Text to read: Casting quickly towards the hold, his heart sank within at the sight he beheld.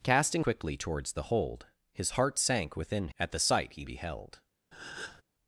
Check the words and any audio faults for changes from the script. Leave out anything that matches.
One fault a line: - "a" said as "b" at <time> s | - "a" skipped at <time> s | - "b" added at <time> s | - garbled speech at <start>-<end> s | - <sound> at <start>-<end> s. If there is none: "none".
- breath at 4.7-5.2 s